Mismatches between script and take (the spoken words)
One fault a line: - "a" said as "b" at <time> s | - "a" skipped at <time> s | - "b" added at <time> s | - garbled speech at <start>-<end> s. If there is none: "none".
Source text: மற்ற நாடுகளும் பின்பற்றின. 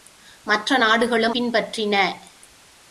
none